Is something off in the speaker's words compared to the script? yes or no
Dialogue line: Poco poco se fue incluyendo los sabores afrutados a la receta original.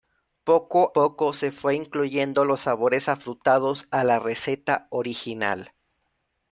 no